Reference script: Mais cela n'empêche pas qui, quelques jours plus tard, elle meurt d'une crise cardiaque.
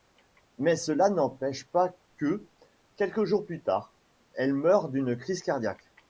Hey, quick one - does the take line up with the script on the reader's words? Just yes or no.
no